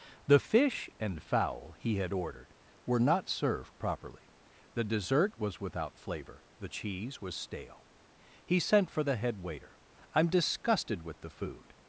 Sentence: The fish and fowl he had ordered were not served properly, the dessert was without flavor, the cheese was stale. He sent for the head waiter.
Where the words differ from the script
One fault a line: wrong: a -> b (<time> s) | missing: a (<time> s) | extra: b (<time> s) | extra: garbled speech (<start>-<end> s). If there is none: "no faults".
extra: I'm disgusted with the food (10.1 s)